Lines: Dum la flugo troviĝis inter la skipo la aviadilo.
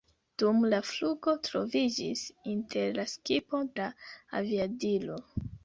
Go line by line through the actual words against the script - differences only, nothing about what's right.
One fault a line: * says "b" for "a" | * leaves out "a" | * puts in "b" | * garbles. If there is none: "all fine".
all fine